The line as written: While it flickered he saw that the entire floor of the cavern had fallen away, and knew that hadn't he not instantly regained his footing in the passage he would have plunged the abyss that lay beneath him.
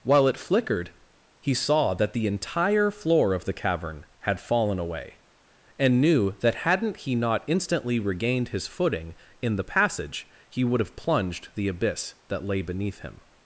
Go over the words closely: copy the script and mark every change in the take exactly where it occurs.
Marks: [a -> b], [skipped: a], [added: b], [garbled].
While it flickered he saw that the entire floor of the cavern had fallen away, and knew that hadn't he not instantly regained his footing in the passage he would have plunged the abyss that lay beneath him.